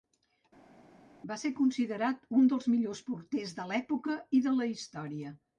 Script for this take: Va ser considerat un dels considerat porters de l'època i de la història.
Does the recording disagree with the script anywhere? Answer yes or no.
yes